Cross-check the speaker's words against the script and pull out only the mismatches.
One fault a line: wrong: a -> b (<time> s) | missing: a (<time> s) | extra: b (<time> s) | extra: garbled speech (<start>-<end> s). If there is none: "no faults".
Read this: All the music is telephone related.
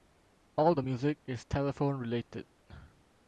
no faults